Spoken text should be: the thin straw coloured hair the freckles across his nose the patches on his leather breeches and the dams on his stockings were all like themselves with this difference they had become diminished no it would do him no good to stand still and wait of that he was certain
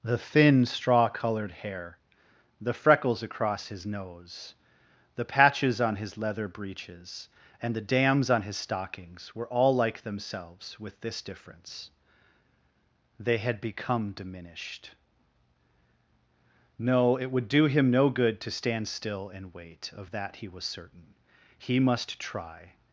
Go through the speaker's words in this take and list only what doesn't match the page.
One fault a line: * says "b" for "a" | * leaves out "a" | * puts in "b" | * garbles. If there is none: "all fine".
* puts in "he must try"